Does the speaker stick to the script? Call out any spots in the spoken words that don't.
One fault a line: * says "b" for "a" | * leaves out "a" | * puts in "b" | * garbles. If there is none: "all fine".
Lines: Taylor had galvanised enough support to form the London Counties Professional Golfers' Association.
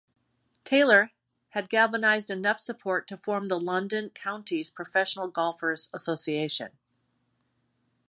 all fine